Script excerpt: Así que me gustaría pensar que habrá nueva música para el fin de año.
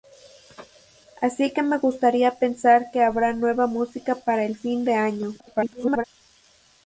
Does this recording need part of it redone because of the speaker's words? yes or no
yes